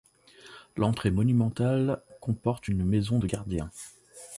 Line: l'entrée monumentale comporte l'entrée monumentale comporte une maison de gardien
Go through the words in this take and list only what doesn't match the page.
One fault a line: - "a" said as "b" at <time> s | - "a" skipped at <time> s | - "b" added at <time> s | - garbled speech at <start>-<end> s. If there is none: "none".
- "l'entrée monumentale comporte" skipped at 2.7 s